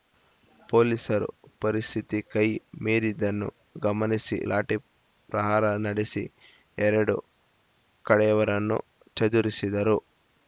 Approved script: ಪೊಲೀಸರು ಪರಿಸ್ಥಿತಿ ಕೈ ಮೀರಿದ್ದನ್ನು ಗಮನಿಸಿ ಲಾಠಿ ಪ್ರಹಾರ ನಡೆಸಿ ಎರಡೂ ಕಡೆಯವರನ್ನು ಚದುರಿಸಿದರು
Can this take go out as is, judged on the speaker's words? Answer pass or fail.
pass